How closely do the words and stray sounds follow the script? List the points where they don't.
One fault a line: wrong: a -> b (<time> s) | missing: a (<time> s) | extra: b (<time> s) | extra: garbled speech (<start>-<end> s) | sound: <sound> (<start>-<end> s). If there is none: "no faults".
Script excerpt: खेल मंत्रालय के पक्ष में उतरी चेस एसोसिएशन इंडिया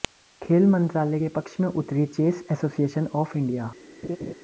extra: ऑफ (3.2 s)
sound: laugh (4.0-4.3 s)